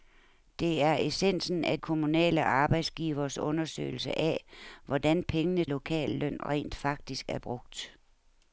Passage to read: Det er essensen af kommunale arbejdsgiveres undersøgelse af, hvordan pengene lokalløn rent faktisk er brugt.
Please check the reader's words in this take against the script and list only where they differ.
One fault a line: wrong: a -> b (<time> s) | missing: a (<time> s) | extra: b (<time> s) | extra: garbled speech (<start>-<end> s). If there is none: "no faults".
no faults